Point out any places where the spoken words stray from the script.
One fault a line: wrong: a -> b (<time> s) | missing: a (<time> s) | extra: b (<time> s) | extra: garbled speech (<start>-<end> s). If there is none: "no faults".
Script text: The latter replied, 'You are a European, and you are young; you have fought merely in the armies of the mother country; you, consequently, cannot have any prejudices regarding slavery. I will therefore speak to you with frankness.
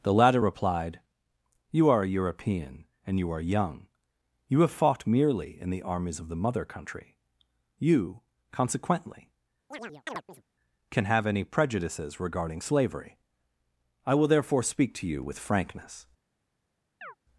wrong: cannot -> can (10.9 s)